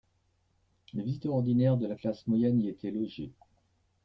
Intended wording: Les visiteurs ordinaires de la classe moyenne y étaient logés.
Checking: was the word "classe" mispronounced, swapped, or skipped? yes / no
no